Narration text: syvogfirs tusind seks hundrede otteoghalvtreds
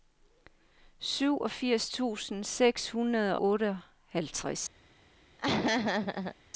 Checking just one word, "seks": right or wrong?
right